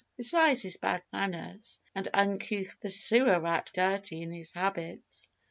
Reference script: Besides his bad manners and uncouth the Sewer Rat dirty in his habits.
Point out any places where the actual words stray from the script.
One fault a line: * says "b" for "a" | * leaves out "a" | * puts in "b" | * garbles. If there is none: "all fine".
all fine